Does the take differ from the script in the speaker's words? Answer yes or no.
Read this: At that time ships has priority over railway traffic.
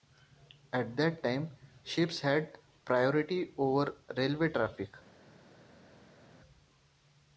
yes